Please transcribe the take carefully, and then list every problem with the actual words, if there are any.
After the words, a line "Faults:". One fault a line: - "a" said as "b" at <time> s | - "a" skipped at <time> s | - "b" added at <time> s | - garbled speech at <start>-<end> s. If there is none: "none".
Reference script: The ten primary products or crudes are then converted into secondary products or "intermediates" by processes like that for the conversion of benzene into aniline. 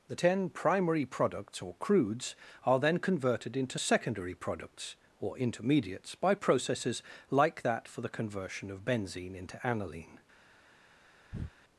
The ten primary products or crudes are then converted into secondary products or "intermediates" by processes like that for the conversion of benzene into aniline.
Faults:
none